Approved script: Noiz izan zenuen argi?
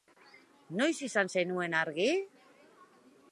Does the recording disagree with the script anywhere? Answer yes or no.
no